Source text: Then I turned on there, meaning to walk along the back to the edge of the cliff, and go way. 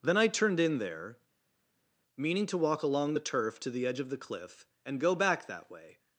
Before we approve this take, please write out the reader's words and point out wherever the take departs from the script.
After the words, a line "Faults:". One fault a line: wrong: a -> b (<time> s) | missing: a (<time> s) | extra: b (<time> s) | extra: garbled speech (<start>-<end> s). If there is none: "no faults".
Then I turned in there, meaning to walk along the turf to the edge of the cliff, and go back that way.
Faults:
wrong: on -> in (0.6 s)
wrong: back -> turf (3.2 s)
extra: back that (5.1 s)